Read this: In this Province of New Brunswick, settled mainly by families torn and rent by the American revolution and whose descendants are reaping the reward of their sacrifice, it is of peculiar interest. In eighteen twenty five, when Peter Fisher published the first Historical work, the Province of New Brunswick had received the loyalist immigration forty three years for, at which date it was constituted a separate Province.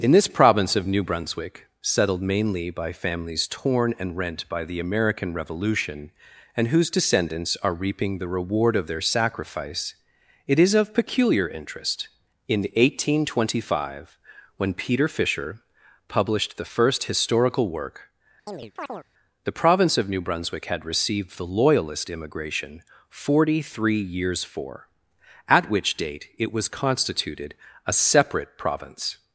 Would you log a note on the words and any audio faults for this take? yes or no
yes